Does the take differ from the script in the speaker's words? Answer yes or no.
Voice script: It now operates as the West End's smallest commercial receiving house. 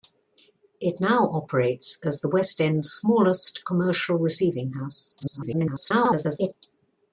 yes